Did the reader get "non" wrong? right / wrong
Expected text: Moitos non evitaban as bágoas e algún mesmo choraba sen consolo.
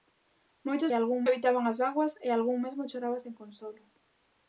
wrong